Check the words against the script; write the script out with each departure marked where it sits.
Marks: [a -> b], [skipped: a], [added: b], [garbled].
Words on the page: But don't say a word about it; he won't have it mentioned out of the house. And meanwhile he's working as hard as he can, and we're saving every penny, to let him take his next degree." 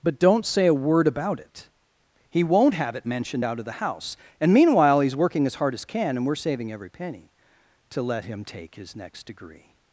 But don't say a word about it; he won't have it mentioned out of the house. And meanwhile he's working as hard as [skipped: he] can, and we're saving every penny, to let him take his next degree."